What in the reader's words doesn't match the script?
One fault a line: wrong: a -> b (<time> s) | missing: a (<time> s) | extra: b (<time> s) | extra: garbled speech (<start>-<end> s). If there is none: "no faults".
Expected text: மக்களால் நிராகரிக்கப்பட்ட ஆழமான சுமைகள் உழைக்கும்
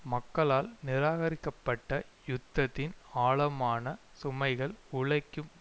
extra: யுத்தத்தின் (2.3 s)